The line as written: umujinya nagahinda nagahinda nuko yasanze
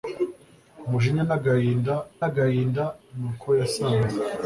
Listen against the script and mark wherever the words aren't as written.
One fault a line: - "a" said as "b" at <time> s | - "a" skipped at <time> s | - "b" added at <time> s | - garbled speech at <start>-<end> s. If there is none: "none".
none